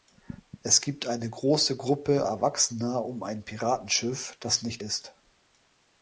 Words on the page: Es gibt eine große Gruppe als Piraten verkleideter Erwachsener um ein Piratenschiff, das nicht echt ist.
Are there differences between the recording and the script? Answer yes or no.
yes